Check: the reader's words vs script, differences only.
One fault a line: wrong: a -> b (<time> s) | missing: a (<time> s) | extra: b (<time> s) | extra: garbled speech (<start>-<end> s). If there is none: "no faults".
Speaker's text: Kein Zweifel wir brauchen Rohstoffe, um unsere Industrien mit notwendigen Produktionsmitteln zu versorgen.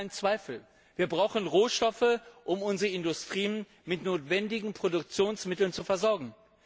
no faults